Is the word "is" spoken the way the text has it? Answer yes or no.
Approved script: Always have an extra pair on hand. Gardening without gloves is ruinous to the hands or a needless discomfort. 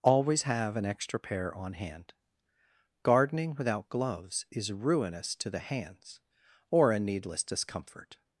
yes